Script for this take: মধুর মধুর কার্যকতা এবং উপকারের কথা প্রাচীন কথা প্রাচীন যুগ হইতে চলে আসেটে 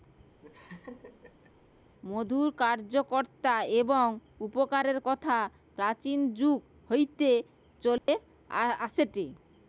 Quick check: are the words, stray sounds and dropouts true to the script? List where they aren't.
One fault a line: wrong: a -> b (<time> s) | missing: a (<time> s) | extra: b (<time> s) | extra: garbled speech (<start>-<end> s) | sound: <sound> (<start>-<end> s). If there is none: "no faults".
sound: laugh (0.4-1.5 s)
missing: মধুর (2.5 s)
missing: কথা প্রাচীন (6.2 s)
sound: dropout (8.0-8.1 s)